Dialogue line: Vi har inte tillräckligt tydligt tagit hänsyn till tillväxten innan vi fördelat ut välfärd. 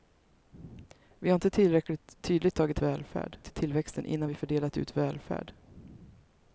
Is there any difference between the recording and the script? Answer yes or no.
yes